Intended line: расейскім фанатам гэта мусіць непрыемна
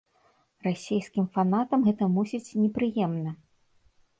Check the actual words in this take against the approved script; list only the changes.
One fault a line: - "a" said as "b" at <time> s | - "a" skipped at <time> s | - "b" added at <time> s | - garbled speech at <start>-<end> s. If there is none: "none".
none